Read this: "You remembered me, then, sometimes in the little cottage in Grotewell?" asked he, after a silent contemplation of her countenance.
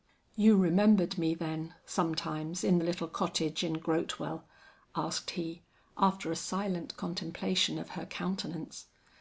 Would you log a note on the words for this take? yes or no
no